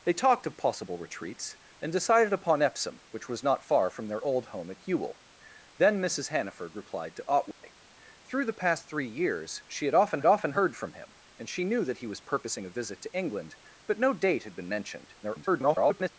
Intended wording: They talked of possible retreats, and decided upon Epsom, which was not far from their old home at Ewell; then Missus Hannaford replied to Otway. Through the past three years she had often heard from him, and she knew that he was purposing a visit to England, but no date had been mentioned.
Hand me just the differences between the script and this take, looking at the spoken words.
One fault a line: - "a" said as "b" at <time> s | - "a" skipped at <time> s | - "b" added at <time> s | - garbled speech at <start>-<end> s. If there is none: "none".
- "often" added at 10.2 s
- garbled speech at 15.2-16.1 s